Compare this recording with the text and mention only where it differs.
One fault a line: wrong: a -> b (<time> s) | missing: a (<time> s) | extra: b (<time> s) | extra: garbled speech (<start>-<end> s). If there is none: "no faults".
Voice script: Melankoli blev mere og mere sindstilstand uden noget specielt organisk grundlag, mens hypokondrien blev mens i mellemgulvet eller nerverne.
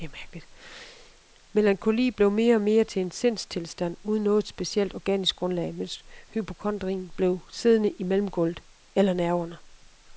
extra: til en (2.8 s)
wrong: mens -> siddende (7.5 s)